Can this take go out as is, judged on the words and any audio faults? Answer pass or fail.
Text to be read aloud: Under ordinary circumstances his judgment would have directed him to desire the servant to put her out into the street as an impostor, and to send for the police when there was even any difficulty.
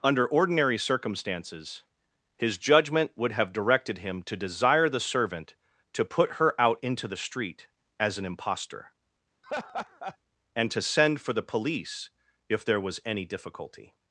fail